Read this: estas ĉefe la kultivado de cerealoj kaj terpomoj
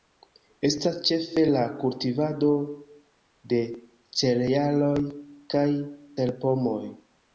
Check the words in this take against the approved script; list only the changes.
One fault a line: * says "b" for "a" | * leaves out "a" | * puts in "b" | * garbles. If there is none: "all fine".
all fine